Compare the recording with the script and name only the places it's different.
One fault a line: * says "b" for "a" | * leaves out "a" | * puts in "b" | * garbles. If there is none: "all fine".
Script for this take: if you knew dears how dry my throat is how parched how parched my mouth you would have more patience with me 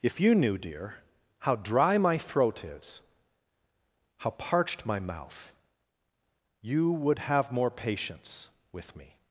* says "dear" for "dears"
* leaves out "how parched"